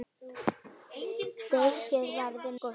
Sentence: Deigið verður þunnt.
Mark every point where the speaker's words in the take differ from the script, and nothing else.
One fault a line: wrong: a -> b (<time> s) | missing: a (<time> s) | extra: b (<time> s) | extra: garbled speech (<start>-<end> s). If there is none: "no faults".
no faults